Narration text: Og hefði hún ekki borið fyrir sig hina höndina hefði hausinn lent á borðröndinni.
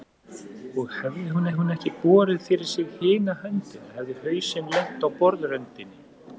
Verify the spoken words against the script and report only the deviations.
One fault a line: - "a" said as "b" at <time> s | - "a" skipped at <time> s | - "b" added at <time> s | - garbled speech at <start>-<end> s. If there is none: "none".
- "hún" added at 1.6 s